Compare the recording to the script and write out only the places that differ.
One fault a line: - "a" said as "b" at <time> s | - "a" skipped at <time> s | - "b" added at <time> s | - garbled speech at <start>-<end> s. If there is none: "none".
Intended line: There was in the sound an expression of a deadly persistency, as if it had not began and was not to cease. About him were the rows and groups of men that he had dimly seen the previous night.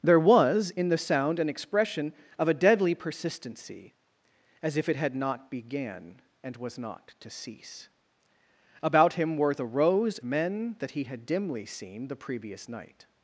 - "and groups of" skipped at 10.2 s